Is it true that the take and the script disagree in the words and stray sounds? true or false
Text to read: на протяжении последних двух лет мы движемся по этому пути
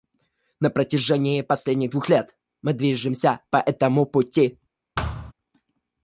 true